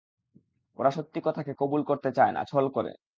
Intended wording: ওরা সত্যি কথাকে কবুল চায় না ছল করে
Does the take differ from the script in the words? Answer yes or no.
yes